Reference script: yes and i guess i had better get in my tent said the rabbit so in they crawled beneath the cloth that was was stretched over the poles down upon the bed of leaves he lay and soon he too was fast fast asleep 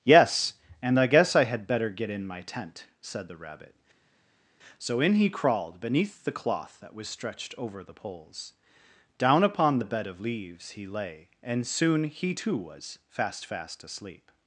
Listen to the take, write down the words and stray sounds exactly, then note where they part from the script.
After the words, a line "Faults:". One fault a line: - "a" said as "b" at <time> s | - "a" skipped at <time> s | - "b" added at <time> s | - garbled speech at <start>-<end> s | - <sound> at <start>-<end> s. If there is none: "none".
yes and i guess i had better get in my tent said the rabbit so in he crawled beneath the cloth that was stretched over the poles down upon the bed of leaves he lay and soon he too was fast fast asleep
Faults:
- "they" said as "he" at 5.1 s
- "was" skipped at 7.1 s